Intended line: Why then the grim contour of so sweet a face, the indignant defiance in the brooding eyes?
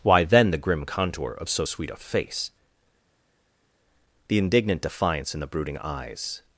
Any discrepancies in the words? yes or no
no